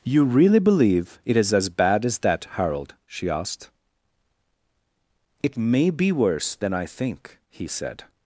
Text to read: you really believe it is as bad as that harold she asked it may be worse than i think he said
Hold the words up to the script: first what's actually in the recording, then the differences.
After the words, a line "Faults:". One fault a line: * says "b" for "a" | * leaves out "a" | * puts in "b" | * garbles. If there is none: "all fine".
you really believe it is as bad as that harold she asked it may be worse than i think he said
Faults:
all fine